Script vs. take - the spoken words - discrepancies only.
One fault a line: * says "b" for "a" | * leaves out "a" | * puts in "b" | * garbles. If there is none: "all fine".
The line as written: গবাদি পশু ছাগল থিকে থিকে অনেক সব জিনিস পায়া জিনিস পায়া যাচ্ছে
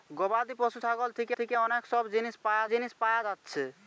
all fine